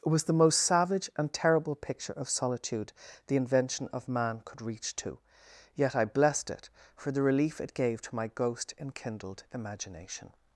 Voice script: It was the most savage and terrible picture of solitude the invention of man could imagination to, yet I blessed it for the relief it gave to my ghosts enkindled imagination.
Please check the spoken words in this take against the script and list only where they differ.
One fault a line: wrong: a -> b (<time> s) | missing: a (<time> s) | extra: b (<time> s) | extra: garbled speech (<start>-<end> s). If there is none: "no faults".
wrong: imagination -> reach (4.6 s)
wrong: ghosts -> ghost (8.3 s)